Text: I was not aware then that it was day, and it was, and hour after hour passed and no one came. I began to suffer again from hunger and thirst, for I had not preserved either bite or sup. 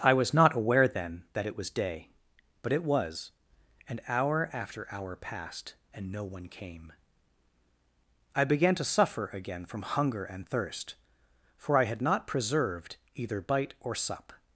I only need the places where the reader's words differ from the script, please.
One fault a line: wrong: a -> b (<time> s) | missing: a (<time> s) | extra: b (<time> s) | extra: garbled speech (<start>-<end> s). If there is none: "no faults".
wrong: and -> but (2.6 s)